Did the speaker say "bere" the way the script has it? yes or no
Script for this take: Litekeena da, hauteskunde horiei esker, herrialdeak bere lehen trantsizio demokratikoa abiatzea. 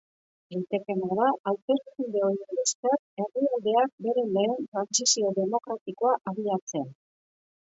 yes